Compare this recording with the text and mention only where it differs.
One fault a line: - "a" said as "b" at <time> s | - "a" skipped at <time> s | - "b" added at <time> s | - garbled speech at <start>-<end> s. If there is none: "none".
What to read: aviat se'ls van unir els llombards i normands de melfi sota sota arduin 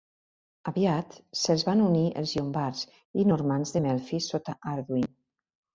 - "sota" skipped at 4.6 s